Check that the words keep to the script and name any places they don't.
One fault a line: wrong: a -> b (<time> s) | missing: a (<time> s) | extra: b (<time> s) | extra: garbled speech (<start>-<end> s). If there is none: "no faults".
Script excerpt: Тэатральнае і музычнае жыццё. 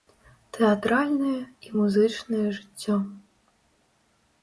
no faults